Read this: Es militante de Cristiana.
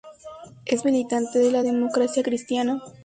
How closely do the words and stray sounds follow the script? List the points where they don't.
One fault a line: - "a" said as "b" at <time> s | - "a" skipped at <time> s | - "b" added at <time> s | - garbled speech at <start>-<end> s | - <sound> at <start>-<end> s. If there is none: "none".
- "la Democracia" added at 1.5 s